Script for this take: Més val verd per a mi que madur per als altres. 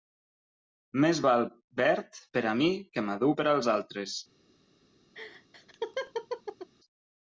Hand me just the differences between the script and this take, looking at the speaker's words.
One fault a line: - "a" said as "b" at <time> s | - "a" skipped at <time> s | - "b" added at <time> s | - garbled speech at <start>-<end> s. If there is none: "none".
none